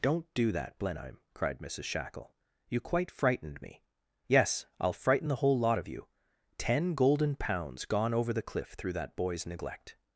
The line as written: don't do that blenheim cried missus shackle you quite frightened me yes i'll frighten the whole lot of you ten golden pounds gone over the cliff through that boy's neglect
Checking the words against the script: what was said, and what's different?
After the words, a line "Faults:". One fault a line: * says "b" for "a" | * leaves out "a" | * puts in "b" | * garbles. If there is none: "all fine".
don't do that blenheim cried missus shackle you quite frightened me yes i'll frighten the whole lot of you ten golden pounds gone over the cliff through that boy's neglect
Faults:
all fine